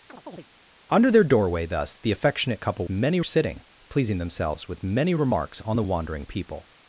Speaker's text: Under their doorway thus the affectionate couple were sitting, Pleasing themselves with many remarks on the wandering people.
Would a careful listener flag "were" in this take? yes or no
yes